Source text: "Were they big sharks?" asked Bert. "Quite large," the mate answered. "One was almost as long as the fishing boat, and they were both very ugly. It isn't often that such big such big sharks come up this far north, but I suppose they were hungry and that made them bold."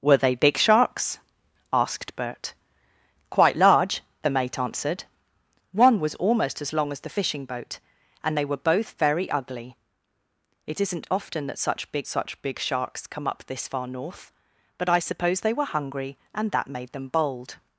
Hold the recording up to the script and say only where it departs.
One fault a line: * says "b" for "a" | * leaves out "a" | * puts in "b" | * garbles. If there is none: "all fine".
all fine